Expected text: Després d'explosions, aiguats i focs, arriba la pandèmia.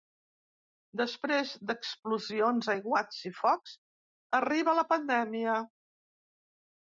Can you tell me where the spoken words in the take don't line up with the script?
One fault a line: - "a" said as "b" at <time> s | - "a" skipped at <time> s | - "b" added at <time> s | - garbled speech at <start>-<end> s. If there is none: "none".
none